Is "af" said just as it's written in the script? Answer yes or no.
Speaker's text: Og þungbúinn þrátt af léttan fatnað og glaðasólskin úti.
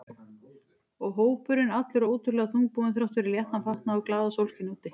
no